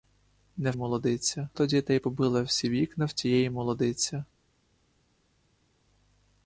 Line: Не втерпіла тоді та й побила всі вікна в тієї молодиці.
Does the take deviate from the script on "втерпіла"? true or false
true